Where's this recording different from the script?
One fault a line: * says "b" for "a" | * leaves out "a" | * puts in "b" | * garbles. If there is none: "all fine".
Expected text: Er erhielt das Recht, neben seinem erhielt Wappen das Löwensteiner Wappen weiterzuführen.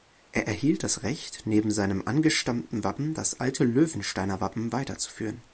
* says "angestammten" for "erhielt"
* puts in "alte"